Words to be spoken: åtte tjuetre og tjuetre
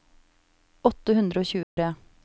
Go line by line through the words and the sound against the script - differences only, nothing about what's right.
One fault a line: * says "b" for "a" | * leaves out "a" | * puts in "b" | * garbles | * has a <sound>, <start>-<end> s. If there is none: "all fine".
* says "hundre" for "tjuetre"
* has a dropout, 1.6-1.8 s